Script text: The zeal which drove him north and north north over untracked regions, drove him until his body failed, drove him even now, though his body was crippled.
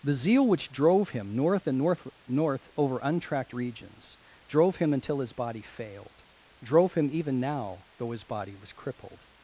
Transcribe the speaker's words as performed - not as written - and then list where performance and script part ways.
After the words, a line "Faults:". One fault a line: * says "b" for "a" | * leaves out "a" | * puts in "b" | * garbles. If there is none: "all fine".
The zeal which drove him north and north north over untracked regions, drove him until his body failed, drove him even now, though his body was crippled.
Faults:
all fine